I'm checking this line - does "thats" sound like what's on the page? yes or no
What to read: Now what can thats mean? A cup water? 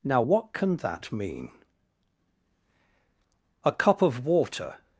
no